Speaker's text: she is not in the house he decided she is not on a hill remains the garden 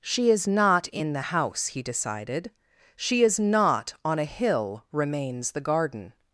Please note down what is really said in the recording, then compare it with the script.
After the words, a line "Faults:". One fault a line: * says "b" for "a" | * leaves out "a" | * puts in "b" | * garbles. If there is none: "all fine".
she is not in the house he decided she is not on a hill remains the garden
Faults:
all fine